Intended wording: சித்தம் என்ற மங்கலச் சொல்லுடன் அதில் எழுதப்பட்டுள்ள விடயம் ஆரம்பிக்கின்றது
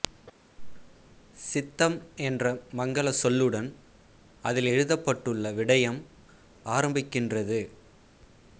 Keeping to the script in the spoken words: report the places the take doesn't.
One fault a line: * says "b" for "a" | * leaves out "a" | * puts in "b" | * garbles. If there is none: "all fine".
all fine